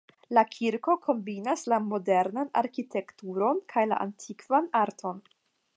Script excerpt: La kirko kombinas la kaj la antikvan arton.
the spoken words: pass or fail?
fail